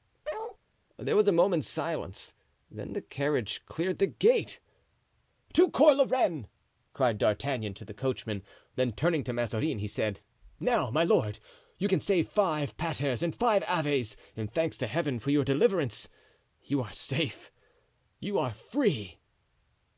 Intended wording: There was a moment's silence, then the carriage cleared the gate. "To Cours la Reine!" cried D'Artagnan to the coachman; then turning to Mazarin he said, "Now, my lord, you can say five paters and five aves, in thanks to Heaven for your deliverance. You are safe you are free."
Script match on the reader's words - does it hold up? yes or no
yes